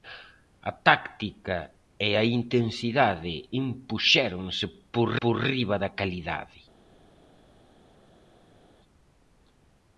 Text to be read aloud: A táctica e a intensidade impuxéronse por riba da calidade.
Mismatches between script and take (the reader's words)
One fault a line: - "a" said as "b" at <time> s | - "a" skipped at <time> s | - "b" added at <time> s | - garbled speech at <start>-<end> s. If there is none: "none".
- "por" added at 5.2 s